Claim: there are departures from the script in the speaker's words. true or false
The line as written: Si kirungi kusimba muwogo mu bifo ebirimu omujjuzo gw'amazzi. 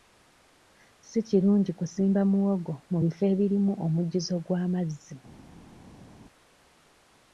false